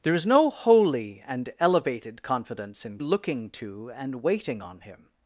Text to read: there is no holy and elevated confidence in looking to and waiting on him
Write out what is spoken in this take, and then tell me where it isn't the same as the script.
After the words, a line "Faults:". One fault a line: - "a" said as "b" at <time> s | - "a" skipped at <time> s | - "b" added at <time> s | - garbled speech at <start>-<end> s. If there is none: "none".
there is no holy and elevated confidence in looking to and waiting on him
Faults:
none